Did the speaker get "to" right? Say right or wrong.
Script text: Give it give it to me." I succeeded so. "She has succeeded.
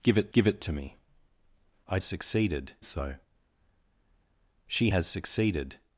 right